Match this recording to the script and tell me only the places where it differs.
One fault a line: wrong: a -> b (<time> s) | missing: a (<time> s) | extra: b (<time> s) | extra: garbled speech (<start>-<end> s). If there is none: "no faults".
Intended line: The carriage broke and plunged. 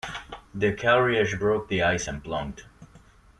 extra: the ice (1.7 s)